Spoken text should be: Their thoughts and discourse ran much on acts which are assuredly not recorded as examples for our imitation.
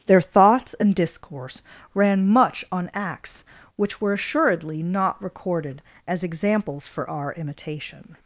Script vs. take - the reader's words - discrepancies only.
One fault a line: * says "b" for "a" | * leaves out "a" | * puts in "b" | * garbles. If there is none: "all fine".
* says "were" for "are"